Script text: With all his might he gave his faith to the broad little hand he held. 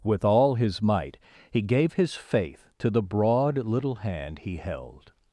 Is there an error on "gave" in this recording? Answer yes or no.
no